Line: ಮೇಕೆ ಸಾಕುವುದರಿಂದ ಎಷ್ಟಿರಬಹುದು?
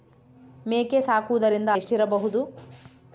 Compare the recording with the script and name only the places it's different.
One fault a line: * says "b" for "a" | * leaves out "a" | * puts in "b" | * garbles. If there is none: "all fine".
all fine